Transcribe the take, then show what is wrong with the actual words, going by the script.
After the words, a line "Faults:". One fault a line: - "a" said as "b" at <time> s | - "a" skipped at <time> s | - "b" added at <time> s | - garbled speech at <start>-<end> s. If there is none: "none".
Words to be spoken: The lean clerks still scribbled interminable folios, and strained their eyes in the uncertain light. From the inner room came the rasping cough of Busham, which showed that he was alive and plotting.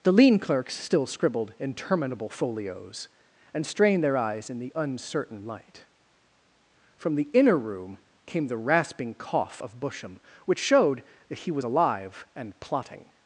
The lean clerks still scribbled interminable folios, and strained their eyes in the uncertain light. From the inner room came the rasping cough of Busham, which showed that he was alive and plotting.
Faults:
none